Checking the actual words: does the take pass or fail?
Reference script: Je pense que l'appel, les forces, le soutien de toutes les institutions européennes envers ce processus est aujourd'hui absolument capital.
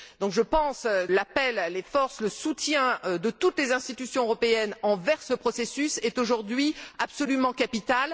fail